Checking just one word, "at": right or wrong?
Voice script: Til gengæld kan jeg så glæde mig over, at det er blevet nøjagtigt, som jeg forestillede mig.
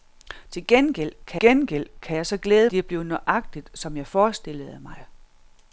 wrong